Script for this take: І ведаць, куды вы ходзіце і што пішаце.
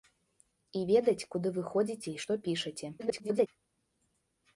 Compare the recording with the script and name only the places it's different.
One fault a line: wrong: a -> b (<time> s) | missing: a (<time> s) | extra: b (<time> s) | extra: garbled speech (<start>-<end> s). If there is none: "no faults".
extra: garbled speech (3.0-3.5 s)